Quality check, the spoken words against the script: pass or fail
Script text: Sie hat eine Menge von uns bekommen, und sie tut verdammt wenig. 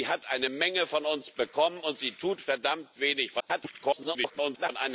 fail